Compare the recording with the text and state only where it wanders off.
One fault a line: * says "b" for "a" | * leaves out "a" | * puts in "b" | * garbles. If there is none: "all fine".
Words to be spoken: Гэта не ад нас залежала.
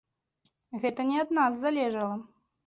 all fine